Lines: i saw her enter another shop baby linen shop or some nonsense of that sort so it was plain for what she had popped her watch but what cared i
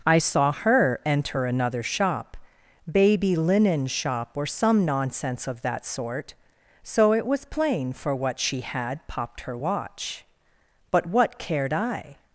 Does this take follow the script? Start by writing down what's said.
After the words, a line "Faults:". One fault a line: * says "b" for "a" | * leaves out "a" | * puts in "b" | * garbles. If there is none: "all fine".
i saw her enter another shop baby linen shop or some nonsense of that sort so it was plain for what she had popped her watch but what cared i
Faults:
all fine